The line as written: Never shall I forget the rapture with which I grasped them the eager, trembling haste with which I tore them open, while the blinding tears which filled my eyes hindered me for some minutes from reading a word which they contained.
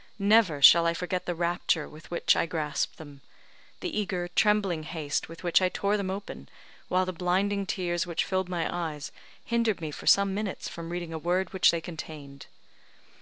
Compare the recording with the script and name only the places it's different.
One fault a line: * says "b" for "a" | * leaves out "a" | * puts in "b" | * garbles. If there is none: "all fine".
all fine